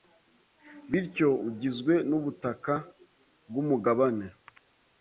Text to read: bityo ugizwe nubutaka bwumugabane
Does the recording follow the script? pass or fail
pass